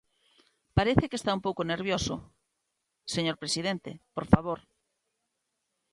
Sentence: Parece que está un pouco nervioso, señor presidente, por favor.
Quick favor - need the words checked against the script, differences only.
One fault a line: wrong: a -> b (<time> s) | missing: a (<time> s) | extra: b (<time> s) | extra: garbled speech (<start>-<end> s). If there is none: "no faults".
no faults